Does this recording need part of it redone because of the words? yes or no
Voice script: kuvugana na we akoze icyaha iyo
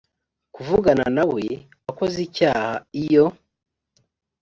no